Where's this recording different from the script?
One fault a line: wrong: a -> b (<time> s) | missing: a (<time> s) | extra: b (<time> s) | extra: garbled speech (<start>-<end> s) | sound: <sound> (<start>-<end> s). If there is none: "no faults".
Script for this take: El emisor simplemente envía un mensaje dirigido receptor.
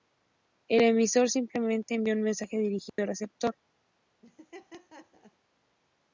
sound: dropout (2.9-3.0 s)
sound: laugh (4.2-5.4 s)